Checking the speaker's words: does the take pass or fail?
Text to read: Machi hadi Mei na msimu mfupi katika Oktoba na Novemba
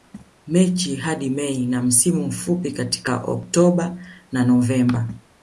pass